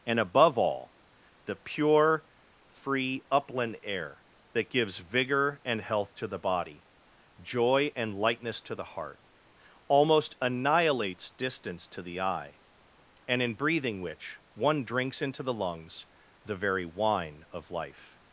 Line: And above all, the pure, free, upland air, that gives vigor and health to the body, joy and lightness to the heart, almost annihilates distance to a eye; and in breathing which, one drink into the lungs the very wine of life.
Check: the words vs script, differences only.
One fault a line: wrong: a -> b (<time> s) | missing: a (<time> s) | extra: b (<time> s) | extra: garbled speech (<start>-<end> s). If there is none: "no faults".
wrong: a -> the (12.0 s)
wrong: drink -> drinks (14.8 s)